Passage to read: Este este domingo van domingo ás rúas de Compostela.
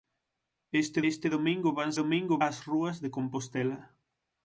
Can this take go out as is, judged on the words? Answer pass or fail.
pass